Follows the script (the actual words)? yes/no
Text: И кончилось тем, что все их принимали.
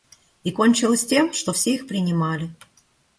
yes